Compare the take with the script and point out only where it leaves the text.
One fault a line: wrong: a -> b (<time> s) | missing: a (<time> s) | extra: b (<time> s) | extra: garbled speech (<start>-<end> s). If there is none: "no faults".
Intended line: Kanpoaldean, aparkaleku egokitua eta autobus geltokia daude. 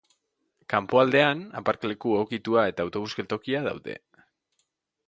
no faults